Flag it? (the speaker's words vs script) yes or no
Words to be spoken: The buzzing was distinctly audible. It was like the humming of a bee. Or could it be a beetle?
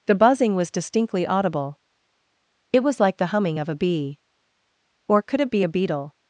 no